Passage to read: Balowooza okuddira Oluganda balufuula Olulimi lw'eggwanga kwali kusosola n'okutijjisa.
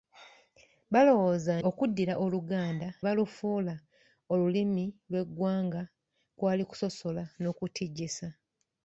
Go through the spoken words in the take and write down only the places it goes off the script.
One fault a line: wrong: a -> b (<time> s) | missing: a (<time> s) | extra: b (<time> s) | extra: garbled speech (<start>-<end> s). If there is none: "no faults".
no faults